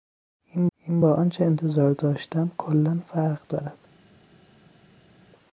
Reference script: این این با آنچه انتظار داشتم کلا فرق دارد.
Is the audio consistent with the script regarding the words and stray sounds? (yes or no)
yes